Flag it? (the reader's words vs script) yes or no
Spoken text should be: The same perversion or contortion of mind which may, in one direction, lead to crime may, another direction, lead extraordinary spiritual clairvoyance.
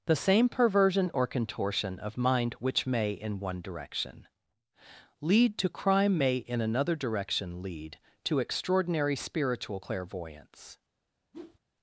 yes